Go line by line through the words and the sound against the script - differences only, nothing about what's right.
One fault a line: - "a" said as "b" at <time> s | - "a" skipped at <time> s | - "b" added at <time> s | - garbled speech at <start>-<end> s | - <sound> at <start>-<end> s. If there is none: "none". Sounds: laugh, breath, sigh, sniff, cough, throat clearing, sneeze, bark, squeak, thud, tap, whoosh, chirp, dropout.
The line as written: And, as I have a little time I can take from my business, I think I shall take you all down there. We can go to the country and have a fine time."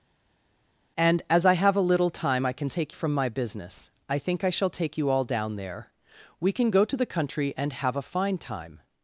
none